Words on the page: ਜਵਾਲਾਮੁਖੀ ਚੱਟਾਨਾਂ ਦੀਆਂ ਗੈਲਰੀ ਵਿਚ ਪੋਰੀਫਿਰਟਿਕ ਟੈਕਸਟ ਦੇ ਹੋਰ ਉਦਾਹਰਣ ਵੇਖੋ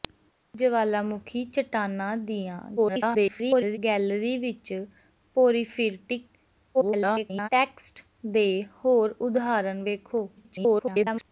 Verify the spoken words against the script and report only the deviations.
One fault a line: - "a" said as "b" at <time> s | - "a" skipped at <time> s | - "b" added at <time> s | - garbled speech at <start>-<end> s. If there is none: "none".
- garbled speech at 2.8-3.8 s
- garbled speech at 6.7-7.5 s
- garbled speech at 10.4-11.3 s